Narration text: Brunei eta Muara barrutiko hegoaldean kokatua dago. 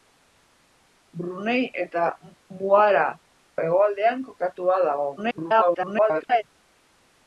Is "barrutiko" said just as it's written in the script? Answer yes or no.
no